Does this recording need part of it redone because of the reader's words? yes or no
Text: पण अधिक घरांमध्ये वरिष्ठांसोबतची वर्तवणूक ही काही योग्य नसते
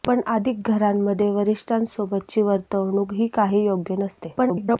yes